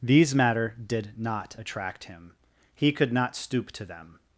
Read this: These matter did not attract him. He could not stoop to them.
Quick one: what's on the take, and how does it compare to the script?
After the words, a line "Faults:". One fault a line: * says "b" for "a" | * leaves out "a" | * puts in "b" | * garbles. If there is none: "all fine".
These matter did not attract him. He could not stoop to them.
Faults:
all fine